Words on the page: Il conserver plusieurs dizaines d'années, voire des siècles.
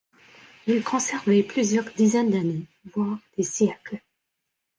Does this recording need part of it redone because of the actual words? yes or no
no